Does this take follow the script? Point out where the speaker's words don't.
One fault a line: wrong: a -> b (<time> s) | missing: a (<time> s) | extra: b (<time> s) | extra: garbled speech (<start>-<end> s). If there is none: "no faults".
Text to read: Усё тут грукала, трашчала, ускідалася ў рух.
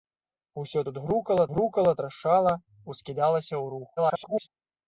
extra: грукала (1.5 s)
extra: garbled speech (4.0-4.5 s)